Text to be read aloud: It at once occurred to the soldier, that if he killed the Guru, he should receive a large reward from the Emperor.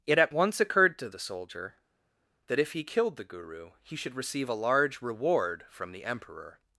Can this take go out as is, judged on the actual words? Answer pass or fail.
pass